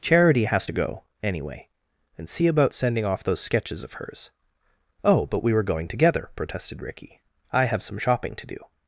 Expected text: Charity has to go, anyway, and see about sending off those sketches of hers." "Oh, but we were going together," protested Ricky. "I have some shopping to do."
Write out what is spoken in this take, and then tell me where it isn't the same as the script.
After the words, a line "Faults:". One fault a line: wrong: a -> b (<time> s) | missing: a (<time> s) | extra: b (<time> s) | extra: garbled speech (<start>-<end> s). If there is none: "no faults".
Charity has to go, anyway, and see about sending off those sketches of hers." "Oh, but we were going together," protested Ricky. "I have some shopping to do."
Faults:
no faults